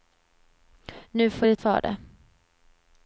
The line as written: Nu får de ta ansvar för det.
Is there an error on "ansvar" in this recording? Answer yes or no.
yes